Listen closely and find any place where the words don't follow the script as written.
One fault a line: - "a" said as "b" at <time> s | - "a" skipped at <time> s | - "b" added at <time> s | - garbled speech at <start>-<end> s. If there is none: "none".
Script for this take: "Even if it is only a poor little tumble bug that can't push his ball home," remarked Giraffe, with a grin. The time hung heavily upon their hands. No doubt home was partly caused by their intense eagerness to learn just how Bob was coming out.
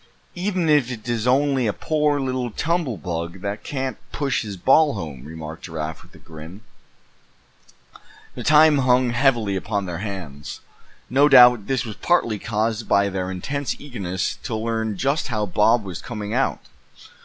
- "home" said as "this" at 11.7 s